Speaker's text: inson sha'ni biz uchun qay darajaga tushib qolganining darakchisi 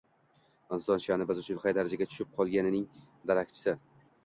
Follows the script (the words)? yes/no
yes